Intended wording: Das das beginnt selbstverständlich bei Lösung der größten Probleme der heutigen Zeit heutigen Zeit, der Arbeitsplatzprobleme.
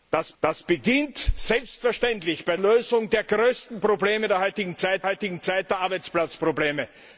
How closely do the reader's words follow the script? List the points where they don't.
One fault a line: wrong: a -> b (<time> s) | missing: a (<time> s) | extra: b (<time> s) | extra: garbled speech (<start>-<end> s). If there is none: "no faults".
no faults